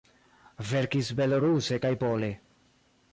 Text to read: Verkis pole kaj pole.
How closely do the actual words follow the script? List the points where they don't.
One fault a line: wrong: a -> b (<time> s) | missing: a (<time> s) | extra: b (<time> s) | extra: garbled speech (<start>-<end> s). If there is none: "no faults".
wrong: pole -> beloruse (1.2 s)